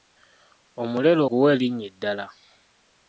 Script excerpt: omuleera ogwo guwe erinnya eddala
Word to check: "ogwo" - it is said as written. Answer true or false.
false